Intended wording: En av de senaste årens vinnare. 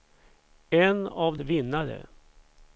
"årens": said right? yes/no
no